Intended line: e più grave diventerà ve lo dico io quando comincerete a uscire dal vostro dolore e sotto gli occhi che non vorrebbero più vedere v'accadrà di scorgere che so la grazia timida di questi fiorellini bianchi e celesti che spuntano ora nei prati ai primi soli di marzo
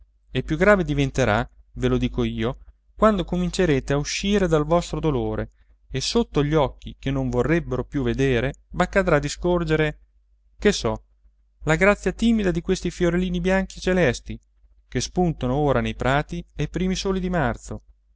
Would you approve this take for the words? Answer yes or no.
yes